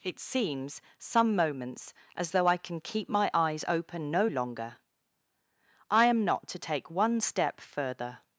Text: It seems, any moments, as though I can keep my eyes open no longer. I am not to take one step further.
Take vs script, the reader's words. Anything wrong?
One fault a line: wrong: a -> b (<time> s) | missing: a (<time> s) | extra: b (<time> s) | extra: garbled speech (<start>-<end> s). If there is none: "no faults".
wrong: any -> some (1.0 s)